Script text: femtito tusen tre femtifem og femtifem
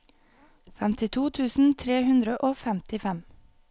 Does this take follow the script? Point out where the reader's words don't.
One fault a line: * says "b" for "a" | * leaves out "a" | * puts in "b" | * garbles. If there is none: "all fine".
* says "hundre" for "femtifem"